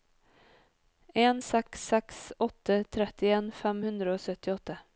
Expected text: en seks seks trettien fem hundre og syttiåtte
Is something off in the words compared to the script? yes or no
yes